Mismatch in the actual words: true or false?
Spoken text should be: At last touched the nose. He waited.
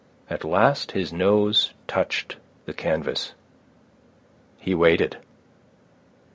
true